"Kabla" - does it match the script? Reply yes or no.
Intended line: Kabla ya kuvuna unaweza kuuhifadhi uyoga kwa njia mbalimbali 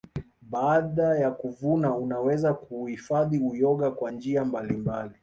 no